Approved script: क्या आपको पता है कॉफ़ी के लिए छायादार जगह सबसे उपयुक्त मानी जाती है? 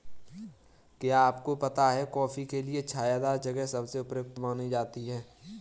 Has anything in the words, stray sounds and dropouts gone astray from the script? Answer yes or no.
no